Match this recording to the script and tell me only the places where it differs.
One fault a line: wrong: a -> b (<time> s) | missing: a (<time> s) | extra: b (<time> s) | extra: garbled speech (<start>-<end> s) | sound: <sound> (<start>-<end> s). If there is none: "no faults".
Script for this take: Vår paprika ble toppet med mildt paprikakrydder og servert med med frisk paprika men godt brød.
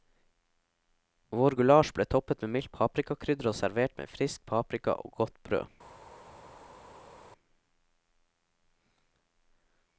wrong: paprika -> gulasj (1.6 s)
missing: med (4.1 s)
wrong: men -> og (5.0 s)